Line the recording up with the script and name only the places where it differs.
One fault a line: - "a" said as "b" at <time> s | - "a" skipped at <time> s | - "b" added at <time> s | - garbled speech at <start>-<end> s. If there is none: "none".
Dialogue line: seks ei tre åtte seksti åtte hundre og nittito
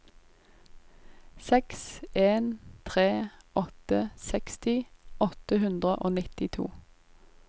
- "ei" said as "en" at 2.2 s